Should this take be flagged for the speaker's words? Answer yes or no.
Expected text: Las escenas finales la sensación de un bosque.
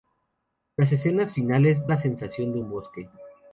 no